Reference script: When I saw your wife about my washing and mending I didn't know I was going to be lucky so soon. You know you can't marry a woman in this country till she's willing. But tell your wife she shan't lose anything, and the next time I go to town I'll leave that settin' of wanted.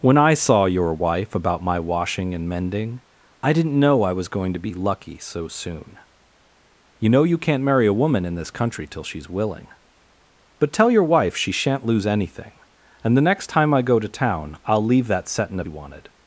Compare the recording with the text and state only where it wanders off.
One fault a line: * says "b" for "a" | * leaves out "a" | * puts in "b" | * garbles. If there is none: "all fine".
all fine